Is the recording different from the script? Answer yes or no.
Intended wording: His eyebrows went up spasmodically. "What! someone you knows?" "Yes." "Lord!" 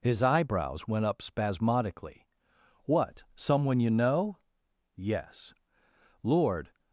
yes